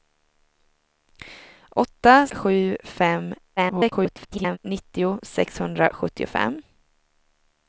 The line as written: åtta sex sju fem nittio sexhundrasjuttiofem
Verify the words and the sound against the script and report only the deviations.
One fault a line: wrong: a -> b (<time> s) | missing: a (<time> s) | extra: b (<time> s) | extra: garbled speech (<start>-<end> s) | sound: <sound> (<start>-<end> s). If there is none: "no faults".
missing: sex (2.3 s)
extra: garbled speech (3.6-4.6 s)